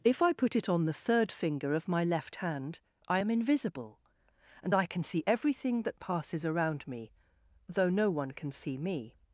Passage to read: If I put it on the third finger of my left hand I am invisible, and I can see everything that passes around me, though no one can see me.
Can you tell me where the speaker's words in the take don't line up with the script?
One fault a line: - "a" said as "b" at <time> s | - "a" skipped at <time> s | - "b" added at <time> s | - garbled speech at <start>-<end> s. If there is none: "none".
none